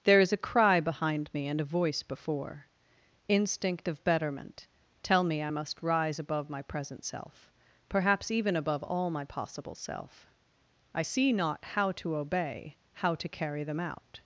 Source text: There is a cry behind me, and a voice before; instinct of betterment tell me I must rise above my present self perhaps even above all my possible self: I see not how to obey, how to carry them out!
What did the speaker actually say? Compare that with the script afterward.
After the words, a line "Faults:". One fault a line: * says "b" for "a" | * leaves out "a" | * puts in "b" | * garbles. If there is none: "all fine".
There is a cry behind me, and a voice before; instinct of betterment tell me I must rise above my present self perhaps even above all my possible self: I see not how to obey, how to carry them out!
Faults:
all fine